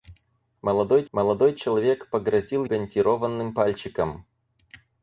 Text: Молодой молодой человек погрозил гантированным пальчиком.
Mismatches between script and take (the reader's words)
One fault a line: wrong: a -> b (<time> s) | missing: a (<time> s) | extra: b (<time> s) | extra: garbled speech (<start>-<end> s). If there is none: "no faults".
no faults